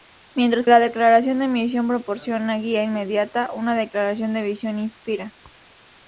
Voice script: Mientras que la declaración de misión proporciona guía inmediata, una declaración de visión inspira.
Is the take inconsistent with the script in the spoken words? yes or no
yes